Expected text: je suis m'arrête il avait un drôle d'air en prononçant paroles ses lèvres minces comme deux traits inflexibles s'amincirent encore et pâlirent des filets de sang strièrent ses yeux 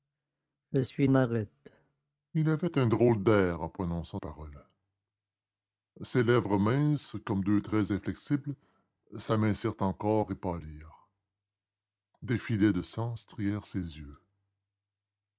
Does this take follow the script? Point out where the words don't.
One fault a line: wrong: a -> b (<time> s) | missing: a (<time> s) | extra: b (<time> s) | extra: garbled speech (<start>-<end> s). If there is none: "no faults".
no faults